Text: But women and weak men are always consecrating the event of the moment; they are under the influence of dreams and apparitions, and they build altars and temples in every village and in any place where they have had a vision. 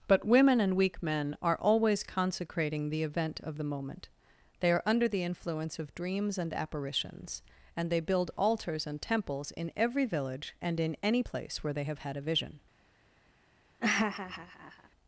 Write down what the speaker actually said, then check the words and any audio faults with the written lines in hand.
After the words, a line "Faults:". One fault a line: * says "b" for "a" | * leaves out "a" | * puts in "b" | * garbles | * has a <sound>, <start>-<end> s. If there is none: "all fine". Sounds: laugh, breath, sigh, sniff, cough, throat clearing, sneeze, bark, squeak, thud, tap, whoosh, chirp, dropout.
But women and weak men are always consecrating the event of the moment; they are under the influence of dreams and apparitions, and they build altars and temples in every village and in any place where they have had a vision.
Faults:
* has a laugh, 13.8-14.9 s